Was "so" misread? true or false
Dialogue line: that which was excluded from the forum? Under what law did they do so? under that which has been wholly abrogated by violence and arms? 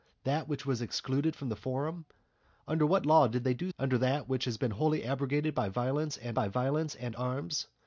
true